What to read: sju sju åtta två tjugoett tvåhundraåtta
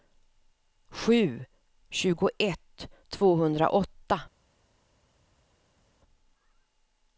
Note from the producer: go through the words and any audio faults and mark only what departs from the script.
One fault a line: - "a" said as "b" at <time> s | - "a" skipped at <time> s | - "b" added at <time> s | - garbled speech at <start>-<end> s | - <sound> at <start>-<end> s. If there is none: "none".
- "sju åtta två" skipped at 1.4 s